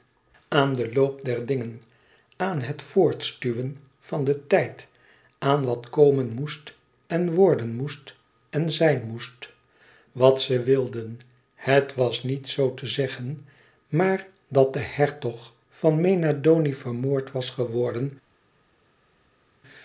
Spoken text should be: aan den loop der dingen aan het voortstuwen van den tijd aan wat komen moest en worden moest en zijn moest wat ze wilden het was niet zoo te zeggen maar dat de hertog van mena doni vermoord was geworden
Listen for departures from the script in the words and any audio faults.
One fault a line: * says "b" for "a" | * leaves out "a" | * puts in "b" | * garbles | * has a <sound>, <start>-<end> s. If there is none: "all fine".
all fine